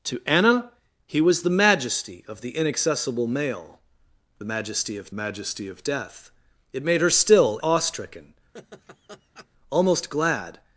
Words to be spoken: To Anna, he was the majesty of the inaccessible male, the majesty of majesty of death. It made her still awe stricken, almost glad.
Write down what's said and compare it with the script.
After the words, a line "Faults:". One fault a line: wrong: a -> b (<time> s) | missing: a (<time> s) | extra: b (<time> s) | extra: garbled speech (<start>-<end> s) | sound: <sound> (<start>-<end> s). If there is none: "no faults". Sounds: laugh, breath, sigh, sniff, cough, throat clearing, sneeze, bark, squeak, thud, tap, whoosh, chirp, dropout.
To Anna, he was the majesty of the inaccessible male, the majesty of majesty of death. It made her still awe stricken, almost glad.
Faults:
sound: laugh (8.5-9.5 s)